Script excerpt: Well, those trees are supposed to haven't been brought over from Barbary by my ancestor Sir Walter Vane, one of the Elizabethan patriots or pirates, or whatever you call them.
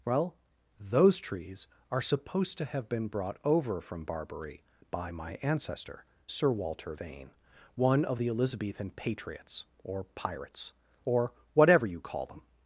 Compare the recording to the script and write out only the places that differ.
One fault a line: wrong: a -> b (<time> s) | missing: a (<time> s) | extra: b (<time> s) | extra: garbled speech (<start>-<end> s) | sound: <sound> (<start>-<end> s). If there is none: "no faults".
wrong: haven't -> have (2.6 s)